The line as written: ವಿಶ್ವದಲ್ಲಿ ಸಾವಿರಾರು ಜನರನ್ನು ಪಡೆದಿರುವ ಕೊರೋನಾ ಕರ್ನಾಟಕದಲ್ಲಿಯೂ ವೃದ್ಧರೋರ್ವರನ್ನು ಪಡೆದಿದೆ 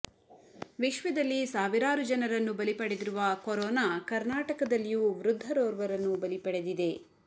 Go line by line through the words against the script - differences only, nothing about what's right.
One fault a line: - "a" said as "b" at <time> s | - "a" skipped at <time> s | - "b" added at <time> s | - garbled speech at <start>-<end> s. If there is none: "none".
- "ಬಲಿ" added at 2.5 s
- "ಬಲಿ" added at 6.2 s